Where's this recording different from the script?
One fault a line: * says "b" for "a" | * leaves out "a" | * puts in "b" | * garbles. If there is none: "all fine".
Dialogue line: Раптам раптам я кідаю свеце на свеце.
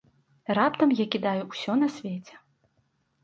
* leaves out "раптам"
* says "ўсё" for "свеце"